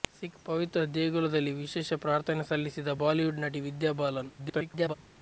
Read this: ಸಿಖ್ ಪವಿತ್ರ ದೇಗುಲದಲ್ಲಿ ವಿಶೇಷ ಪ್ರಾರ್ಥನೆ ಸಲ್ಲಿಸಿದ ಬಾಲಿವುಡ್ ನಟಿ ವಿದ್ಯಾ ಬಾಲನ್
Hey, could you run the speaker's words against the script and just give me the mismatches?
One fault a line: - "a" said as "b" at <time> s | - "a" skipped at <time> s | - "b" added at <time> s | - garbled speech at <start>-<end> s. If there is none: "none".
- garbled speech at 4.4-4.9 s